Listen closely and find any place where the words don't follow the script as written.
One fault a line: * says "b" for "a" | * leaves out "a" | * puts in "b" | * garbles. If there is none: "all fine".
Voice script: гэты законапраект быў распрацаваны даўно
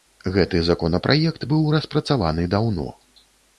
all fine